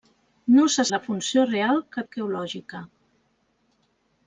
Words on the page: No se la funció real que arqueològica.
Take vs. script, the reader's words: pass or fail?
pass